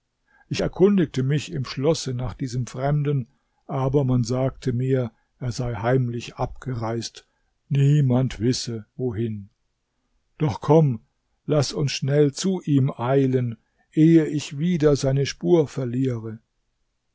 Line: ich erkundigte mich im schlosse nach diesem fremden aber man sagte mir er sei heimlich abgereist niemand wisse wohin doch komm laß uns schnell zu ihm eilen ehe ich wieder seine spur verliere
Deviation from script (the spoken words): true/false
false